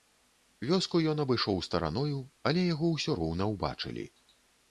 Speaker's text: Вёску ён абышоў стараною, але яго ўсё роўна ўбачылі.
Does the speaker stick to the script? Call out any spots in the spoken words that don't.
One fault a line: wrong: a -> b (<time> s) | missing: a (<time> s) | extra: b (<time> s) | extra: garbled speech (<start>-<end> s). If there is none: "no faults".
no faults